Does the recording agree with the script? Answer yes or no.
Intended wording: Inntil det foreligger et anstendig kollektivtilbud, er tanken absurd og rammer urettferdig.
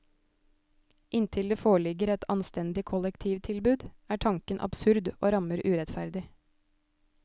yes